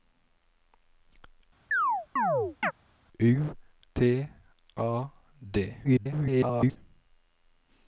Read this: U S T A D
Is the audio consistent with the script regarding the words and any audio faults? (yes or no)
no